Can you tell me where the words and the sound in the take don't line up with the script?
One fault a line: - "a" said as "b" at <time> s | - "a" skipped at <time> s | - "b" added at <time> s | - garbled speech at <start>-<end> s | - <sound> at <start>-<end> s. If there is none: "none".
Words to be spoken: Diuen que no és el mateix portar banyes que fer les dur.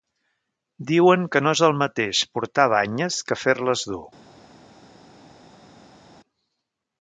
none